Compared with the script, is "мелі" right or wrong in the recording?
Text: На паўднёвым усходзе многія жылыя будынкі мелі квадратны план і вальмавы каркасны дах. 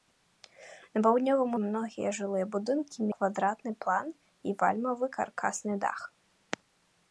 wrong